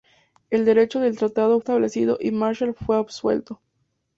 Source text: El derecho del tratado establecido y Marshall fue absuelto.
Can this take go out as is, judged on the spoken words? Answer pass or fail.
pass